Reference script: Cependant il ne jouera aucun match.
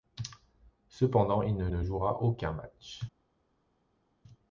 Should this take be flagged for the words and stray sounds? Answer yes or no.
yes